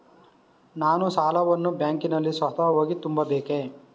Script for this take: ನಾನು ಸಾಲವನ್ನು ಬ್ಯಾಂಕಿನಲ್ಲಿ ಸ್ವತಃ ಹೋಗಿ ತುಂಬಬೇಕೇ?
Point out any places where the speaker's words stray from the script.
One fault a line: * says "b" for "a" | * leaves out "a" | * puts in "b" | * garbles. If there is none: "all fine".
all fine